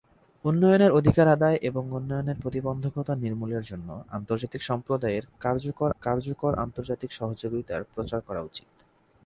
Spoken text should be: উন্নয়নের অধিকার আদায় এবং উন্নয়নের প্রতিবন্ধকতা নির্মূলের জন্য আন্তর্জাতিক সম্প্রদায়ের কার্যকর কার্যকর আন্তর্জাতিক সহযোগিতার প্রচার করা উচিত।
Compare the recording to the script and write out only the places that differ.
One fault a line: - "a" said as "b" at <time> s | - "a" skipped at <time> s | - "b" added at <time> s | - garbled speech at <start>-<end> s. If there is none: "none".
none